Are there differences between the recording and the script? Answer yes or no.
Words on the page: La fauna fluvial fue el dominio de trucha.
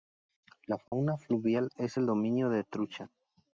yes